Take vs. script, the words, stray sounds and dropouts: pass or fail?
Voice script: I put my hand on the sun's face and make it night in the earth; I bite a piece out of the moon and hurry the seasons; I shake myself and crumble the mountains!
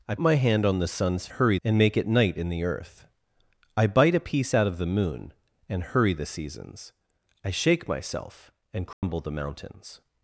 fail